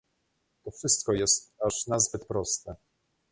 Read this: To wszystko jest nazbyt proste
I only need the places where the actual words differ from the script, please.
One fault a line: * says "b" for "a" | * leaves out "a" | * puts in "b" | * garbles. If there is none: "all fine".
* puts in "aż"